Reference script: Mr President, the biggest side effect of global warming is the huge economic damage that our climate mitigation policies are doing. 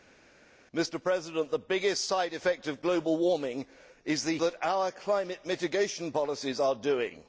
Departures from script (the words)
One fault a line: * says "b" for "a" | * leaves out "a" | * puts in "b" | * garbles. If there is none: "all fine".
* leaves out "huge economic damage"